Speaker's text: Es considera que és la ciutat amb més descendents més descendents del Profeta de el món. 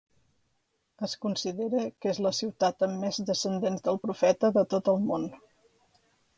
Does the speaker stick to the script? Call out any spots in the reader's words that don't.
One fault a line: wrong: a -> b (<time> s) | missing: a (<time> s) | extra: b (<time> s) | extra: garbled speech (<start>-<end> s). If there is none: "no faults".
missing: més descendents (3.9 s)
extra: tot (4.8 s)